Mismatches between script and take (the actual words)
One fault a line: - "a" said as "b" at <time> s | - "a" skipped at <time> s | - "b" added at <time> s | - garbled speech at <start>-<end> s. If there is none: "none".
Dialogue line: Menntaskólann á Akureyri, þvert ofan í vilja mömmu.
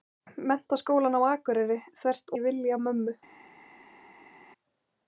- "ofan" skipped at 2.4 s